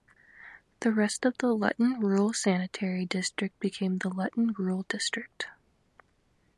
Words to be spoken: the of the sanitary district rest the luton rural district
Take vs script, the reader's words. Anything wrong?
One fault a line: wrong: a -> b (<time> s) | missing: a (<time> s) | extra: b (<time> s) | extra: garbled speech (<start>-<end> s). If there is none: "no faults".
extra: rest (0.9 s)
extra: luton rural (1.5 s)
wrong: rest -> became (3.6 s)